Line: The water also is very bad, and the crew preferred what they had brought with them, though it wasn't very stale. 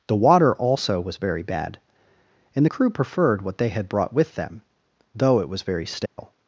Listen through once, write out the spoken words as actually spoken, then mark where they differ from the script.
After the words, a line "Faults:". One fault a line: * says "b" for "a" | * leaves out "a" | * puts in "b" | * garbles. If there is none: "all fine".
The water also was very bad, and the crew preferred what they had brought with them, though it was very stale.
Faults:
* says "was" for "is"
* says "was" for "wasn't"